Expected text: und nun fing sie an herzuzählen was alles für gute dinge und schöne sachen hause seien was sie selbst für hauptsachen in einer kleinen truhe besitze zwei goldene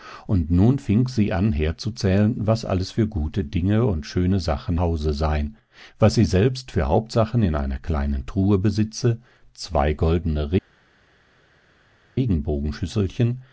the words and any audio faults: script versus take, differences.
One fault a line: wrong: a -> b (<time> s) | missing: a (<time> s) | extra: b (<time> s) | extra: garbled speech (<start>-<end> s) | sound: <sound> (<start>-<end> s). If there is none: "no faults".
no faults